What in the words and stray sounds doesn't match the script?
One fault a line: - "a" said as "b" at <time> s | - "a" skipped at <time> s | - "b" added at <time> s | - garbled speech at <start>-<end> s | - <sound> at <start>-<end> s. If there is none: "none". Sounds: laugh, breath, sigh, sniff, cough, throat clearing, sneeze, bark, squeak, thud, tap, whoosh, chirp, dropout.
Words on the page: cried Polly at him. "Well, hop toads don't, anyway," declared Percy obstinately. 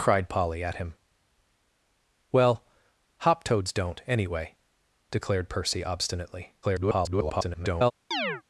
- garbled speech at 6.6-7.9 s
- chirp at 8.1-8.4 s